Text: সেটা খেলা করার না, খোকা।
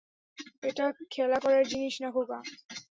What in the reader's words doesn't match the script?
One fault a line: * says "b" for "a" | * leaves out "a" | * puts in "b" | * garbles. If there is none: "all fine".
* says "এটা" for "সেটা"
* puts in "জিনিস"